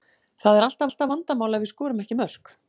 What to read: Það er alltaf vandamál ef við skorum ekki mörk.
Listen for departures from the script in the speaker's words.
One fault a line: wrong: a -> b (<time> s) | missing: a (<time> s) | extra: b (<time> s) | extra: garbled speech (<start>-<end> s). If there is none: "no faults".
extra: alltaf (0.9 s)